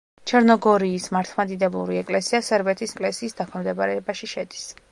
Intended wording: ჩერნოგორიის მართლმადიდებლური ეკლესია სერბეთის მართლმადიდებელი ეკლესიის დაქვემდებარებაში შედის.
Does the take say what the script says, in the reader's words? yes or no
no